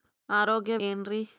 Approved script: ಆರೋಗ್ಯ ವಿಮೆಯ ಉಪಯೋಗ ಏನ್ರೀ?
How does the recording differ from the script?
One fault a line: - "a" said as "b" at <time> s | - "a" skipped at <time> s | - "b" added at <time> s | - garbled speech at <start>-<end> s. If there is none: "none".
- "ವಿಮೆಯ ಉಪಯೋಗ" skipped at 0.8 s